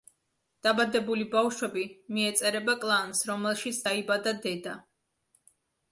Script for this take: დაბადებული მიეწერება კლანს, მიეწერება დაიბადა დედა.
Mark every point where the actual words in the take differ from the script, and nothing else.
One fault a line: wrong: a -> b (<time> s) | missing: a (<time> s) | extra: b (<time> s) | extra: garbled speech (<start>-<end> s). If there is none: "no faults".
extra: ბავშვები (1.4 s)
wrong: მიეწერება -> რომელშიც (3.3 s)